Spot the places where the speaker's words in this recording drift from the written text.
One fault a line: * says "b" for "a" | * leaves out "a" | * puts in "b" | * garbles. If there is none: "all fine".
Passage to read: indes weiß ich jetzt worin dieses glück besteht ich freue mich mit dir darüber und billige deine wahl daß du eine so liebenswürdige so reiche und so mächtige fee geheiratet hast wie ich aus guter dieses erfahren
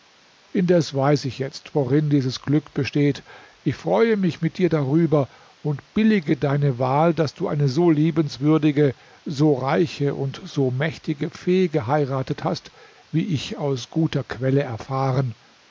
* says "quelle" for "dieses"